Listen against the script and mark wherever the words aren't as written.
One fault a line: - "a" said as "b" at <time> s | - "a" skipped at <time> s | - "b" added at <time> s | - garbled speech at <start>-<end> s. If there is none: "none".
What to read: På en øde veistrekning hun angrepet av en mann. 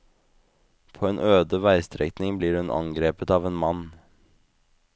- "blir" added at 2.4 s